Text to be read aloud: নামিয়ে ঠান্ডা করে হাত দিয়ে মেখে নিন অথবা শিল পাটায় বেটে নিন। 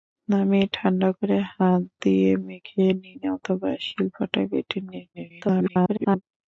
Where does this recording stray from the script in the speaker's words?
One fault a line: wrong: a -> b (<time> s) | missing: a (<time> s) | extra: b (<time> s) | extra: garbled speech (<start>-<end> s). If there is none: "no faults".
extra: garbled speech (5.1-6.2 s)